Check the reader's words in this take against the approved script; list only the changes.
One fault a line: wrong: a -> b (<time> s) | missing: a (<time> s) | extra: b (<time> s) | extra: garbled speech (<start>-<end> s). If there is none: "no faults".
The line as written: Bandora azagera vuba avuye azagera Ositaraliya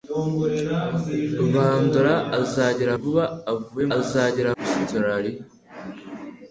no faults